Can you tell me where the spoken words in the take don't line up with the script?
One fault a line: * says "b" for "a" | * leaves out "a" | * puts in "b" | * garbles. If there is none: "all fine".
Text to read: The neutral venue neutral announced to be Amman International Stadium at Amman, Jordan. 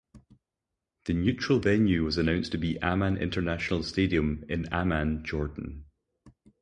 * says "was" for "neutral"
* says "in" for "at"